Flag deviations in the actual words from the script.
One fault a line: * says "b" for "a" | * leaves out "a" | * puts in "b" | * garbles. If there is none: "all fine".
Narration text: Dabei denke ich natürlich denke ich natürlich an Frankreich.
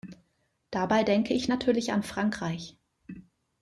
* leaves out "denke ich natürlich"